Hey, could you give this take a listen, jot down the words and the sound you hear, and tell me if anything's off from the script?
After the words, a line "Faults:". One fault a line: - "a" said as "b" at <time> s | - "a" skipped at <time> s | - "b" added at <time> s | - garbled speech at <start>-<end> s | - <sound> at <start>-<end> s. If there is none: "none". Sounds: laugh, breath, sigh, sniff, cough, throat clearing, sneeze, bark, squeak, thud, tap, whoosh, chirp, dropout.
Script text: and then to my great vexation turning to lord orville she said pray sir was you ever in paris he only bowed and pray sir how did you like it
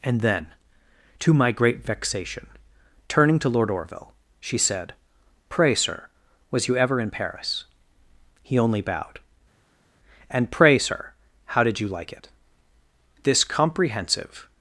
and then to my great vexation turning to lord orville she said pray sir was you ever in paris he only bowed and pray sir how did you like it this comprehensive
Faults:
- "this comprehensive" added at 13.2 s